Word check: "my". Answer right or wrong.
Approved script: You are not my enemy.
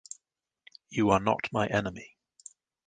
right